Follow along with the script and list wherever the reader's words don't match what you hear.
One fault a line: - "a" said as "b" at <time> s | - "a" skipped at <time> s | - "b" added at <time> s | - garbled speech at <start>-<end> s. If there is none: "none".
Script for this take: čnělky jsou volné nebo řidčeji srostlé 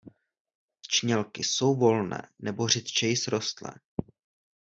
none